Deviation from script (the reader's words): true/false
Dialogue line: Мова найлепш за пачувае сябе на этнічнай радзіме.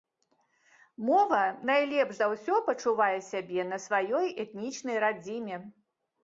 true